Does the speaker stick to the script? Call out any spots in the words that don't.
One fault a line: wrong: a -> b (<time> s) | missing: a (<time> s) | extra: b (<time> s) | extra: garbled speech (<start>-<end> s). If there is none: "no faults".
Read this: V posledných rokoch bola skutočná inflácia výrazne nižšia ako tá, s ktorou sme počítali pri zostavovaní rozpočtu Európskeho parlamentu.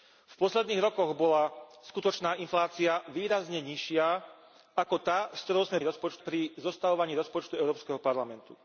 wrong: počítali -> rozpočtu (5.8 s)